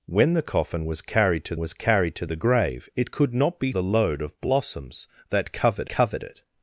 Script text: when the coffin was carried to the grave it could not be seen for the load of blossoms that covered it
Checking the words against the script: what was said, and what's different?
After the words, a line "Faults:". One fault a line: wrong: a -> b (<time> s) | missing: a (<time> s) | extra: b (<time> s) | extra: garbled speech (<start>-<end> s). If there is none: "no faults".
when the coffin was carried to was carried to the grave it could not be the load of blossoms that covered covered it
Faults:
extra: was carried to (1.6 s)
missing: seen for (3.7 s)
extra: covered (5.9 s)